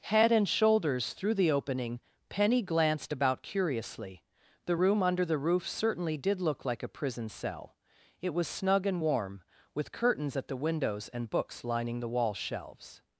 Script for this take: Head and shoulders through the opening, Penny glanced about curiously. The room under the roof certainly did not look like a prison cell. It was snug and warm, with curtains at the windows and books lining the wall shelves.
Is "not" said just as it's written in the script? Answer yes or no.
no